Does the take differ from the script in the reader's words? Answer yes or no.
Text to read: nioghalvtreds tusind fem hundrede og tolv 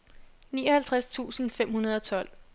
no